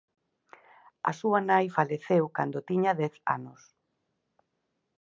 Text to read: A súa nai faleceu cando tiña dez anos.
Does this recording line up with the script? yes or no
yes